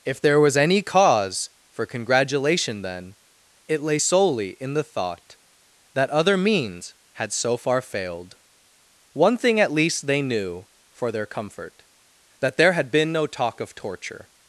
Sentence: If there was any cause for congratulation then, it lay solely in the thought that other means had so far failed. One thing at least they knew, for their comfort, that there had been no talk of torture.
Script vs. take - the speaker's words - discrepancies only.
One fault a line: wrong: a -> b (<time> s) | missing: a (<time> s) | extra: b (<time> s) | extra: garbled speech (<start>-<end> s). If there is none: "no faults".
no faults